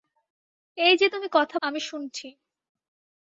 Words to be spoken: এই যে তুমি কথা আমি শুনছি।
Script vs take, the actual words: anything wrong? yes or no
no